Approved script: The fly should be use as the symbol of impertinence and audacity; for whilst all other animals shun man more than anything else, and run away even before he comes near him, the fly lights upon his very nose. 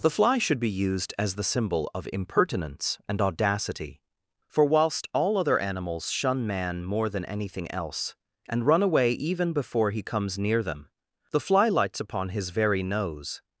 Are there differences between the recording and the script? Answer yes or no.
yes